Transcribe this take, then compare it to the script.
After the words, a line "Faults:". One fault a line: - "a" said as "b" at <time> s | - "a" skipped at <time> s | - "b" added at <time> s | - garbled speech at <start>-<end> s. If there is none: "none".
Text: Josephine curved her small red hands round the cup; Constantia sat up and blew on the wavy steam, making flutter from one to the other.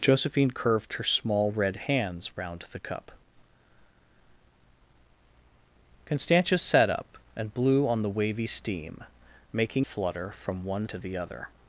Josephine curved her small red hands round the cup; Constantia sat up and blew on the wavy steam, making flutter from one to the other.
Faults:
none